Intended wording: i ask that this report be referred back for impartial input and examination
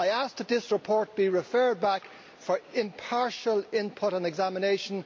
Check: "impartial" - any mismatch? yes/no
no